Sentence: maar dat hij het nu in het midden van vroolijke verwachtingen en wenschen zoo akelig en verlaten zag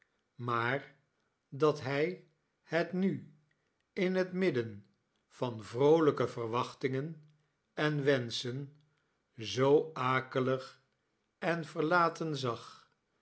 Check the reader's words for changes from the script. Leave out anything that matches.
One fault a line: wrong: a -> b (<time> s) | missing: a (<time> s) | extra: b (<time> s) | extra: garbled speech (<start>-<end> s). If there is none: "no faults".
no faults